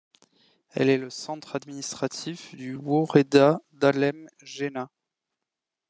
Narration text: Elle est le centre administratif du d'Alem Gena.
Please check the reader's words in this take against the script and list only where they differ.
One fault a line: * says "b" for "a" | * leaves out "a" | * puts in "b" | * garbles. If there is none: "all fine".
* puts in "woreda"